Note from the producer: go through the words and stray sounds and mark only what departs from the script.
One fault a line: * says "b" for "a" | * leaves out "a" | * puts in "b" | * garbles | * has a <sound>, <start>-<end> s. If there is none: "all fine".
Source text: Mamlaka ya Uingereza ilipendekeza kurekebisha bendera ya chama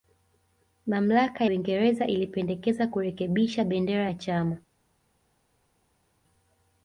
* leaves out "ya"